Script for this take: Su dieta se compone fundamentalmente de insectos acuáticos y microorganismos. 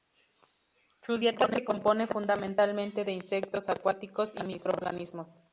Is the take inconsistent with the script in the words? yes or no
no